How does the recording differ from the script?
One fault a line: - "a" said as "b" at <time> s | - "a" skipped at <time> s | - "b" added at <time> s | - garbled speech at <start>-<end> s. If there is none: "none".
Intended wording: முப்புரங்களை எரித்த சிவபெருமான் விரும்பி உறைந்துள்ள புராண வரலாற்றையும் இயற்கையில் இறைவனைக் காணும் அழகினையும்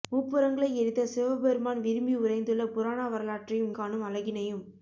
- "இயற்கையில் இறைவனைக்" skipped at 3.7 s